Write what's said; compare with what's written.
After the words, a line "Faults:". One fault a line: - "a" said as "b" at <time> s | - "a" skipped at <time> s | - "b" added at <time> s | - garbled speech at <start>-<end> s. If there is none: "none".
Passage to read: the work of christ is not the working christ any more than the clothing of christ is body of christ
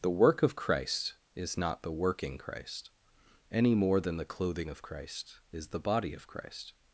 the work of christ is not the working christ any more than the clothing of christ is the body of christ
Faults:
- "the" added at 5.7 s